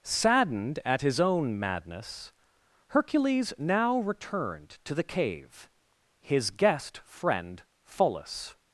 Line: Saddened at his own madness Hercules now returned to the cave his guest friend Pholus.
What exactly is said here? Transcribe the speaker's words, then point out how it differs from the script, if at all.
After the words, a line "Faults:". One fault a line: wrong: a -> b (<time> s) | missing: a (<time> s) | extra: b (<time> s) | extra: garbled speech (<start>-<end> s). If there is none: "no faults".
Saddened at his own madness Hercules now returned to the cave his guest friend Pholus.
Faults:
no faults